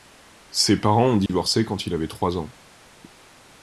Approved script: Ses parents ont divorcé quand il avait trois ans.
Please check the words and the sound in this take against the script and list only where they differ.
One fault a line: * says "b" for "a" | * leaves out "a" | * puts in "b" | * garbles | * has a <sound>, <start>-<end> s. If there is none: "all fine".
* has a dropout, 1.3-1.3 s